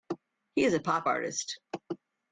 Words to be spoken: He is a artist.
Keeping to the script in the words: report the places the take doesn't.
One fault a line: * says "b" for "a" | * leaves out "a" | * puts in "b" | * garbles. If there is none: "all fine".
* puts in "pop"